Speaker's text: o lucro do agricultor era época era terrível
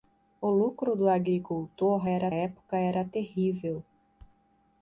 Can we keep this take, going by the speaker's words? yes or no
yes